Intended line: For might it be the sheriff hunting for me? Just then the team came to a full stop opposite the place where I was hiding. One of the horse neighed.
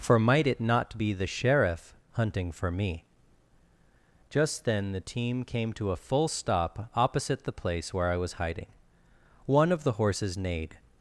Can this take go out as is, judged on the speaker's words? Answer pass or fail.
fail